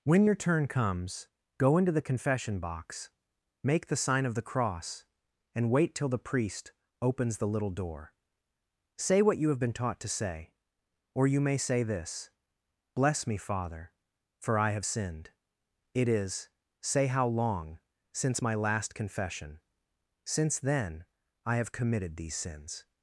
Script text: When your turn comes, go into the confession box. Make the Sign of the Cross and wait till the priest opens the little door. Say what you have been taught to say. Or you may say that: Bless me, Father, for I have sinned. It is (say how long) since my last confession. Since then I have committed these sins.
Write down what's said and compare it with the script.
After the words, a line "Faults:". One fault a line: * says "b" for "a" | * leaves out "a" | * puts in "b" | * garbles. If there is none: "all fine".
When your turn comes, go into the confession box. Make the Sign of the Cross and wait till the priest opens the little door. Say what you have been taught to say. Or you may say this: Bless me, Father, for I have sinned. It is (say how long) since my last confession. Since then I have committed these sins.
Faults:
* says "this" for "that"